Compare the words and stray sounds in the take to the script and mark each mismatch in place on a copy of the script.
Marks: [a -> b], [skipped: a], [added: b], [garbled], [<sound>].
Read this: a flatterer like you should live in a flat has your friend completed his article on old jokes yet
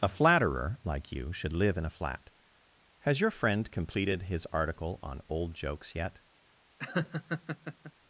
a flatterer like you should live in a flat has your friend completed his article on old jokes yet [laugh]